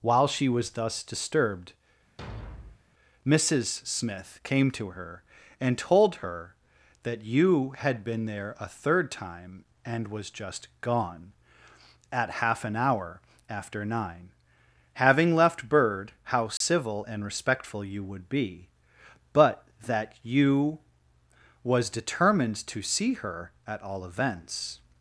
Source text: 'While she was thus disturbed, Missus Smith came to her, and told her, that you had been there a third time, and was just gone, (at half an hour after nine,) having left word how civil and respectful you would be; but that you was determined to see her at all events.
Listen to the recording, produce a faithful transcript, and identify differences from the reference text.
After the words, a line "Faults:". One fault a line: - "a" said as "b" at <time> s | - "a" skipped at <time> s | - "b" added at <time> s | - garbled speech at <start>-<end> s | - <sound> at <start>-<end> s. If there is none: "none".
'While she was thus disturbed, Missus Smith came to her, and told her, that you had been there a third time, and was just gone, (at half an hour after nine,) having left bird how civil and respectful you would be; but that you was determined to see her at all events.
Faults:
- thud at 2.2-2.8 s
- "word" said as "bird" at 15.7 s
- dropout at 16.6-16.6 s